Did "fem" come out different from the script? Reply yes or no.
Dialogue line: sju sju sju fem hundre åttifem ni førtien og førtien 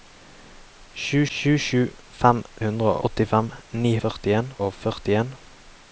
no